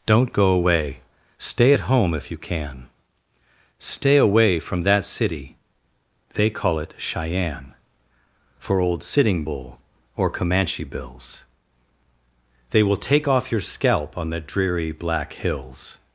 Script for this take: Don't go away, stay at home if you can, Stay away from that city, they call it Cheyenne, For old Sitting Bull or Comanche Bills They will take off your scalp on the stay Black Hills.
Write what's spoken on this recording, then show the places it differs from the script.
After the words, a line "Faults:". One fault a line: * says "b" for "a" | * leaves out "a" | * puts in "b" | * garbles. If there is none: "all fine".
Don't go away, stay at home if you can, Stay away from that city, they call it Cheyenne, For old Sitting Bull or Comanche Bills They will take off your scalp on the dreary Black Hills.
Faults:
* says "dreary" for "stay"